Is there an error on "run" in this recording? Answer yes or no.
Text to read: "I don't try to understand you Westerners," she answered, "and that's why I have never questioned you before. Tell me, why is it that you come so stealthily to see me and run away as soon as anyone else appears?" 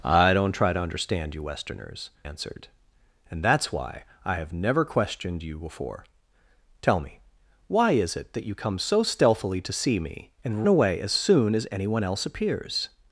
yes